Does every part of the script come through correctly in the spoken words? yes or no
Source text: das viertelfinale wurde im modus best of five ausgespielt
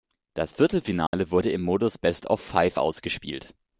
yes